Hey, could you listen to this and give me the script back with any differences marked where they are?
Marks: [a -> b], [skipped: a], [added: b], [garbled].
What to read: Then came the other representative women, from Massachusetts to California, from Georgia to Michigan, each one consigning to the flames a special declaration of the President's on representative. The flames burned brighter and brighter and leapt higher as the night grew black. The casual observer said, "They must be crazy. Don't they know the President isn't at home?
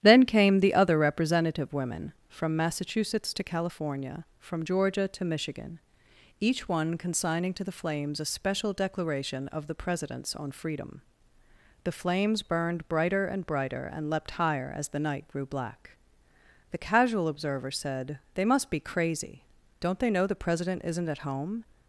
Then came the other representative women, from Massachusetts to California, from Georgia to Michigan, each one consigning to the flames a special declaration of the President's on [representative. -> freedom] The flames burned brighter and brighter and leapt higher as the night grew black. The casual observer said, "They must be crazy. Don't they know the President isn't at home?